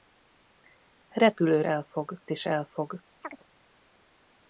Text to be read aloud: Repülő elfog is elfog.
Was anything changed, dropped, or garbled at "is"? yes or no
no